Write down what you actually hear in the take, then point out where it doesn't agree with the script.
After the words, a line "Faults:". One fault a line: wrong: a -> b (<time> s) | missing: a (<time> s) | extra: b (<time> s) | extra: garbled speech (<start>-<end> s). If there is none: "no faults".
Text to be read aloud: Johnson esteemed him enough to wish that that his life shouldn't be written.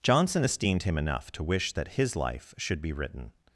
Johnson esteemed him enough to wish that his life should be written.
Faults:
missing: that (1.9 s)
wrong: shouldn't -> should (2.6 s)